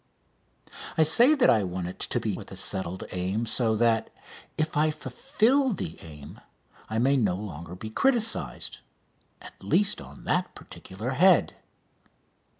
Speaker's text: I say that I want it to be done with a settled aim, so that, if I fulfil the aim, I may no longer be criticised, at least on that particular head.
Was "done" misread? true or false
true